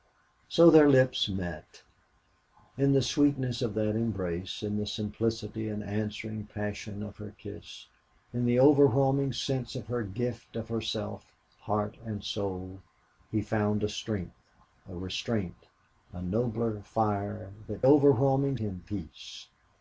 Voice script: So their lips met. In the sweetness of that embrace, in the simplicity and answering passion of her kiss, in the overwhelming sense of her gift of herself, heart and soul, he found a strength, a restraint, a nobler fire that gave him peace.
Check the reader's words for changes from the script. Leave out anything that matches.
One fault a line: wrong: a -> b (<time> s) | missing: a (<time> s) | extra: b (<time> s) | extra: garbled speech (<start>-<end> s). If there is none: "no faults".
wrong: gave -> overwhelming (17.8 s)